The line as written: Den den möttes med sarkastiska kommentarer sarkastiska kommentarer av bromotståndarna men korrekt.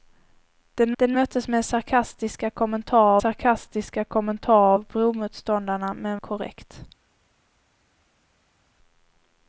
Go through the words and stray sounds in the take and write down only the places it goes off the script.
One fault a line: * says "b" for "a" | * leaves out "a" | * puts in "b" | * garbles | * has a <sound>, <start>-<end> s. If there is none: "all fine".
all fine